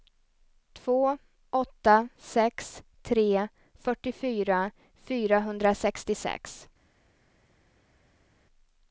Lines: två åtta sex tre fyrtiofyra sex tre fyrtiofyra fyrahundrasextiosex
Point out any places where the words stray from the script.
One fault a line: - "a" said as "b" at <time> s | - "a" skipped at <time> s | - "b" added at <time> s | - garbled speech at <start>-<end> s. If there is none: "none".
- "sex tre fyrtiofyra" skipped at 4.7 s